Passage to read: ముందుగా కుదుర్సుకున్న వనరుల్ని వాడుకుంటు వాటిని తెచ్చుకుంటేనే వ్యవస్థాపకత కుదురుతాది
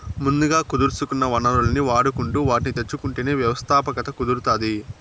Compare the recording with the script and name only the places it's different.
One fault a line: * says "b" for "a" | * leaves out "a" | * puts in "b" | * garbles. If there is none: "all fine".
all fine